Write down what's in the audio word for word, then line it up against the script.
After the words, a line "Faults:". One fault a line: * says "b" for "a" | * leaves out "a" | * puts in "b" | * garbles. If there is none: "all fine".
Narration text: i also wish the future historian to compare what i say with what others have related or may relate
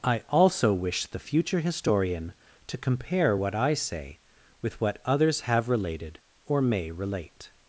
i also wish the future historian to compare what i say with what others have related or may relate
Faults:
all fine